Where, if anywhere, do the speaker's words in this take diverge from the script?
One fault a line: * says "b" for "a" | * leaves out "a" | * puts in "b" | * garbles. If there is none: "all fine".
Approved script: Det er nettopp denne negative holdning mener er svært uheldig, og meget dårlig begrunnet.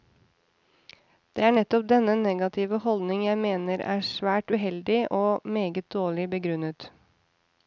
* puts in "jeg"